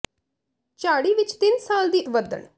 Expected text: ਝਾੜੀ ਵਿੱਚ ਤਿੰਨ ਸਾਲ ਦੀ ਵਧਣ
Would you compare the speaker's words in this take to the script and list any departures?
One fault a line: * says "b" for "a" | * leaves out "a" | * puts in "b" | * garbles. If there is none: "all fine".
all fine